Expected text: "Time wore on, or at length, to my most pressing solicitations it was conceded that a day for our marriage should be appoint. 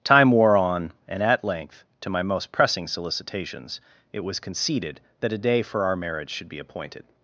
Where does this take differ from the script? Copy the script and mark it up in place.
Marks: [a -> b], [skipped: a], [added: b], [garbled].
"Time wore on, [or -> and] at length, to my most pressing solicitations it was conceded that a day for our marriage should be [appoint. -> appointed]